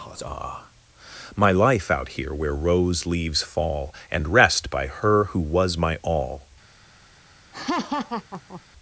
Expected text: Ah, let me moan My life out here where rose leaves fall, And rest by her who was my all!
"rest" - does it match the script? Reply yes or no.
yes